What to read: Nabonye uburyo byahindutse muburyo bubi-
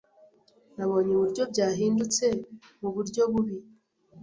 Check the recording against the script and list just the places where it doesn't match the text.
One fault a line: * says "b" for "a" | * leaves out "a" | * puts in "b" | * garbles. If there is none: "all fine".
all fine